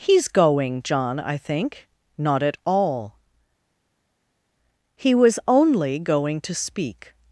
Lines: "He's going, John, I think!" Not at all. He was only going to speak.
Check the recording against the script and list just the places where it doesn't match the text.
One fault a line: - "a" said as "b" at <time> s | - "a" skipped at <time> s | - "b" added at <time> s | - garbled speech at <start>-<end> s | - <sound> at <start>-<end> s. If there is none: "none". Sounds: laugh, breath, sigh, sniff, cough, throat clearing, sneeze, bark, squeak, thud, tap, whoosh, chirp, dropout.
none